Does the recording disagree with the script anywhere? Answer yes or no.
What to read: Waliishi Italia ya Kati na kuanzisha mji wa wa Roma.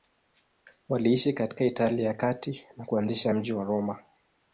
yes